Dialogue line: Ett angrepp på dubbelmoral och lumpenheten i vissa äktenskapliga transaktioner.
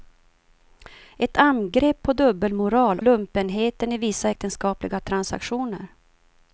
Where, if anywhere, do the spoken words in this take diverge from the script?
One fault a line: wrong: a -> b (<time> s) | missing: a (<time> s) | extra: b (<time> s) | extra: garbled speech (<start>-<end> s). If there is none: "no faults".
missing: och (3.0 s)